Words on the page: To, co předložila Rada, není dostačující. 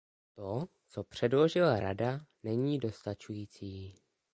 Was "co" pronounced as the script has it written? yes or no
yes